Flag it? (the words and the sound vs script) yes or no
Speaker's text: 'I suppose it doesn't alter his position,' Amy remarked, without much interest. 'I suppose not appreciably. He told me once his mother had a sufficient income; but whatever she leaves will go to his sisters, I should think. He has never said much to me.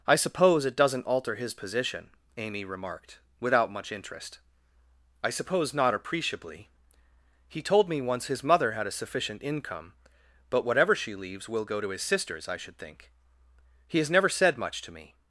no